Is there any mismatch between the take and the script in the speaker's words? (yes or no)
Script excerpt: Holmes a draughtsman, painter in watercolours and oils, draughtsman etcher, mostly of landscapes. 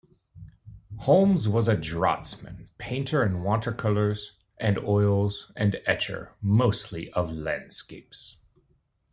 yes